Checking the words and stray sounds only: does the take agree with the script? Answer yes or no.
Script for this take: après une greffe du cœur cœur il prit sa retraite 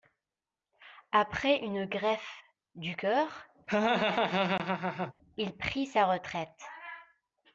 no